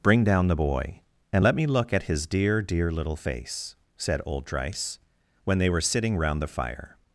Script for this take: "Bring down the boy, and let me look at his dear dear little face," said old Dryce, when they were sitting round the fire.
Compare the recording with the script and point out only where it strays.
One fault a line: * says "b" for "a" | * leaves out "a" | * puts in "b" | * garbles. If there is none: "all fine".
all fine